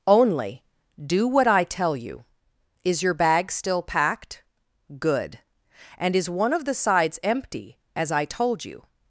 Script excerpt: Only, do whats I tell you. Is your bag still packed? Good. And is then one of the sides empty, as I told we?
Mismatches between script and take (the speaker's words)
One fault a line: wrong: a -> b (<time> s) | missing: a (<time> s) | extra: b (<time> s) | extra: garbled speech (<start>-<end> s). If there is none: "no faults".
wrong: whats -> what (1.3 s)
missing: then (6.3 s)
wrong: we -> you (8.7 s)